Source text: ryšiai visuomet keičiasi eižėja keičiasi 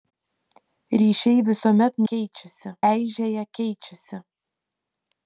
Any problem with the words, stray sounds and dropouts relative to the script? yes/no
no